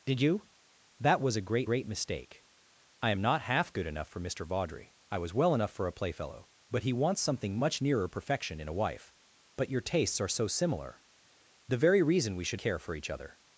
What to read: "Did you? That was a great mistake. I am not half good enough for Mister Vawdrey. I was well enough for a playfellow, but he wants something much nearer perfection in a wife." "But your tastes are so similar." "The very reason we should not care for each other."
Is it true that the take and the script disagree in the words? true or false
true